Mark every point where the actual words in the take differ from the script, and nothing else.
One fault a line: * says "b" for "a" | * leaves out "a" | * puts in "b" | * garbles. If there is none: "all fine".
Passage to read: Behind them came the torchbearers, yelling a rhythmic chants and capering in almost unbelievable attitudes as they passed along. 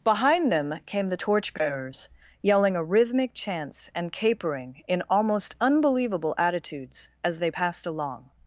all fine